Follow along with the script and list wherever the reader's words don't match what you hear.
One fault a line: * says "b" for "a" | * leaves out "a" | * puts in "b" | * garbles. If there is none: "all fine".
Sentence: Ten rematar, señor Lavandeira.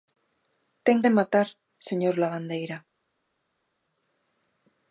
all fine